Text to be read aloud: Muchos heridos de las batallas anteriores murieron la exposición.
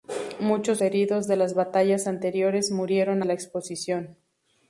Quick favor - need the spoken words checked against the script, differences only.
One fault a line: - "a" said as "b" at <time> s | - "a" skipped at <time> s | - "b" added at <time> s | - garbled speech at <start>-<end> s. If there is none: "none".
none